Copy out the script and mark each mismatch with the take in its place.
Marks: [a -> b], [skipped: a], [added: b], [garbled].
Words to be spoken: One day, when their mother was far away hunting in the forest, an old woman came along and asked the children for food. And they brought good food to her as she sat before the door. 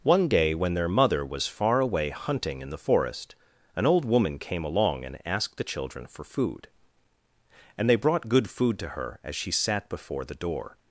One day, when their mother was far away hunting in the forest, an old woman came along and asked the children for food. And they brought good food to her as she sat before the door.